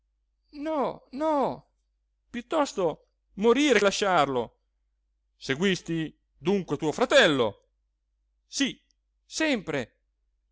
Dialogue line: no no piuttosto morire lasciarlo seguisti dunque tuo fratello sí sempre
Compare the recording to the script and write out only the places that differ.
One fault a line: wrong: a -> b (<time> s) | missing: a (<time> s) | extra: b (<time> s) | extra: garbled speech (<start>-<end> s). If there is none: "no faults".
no faults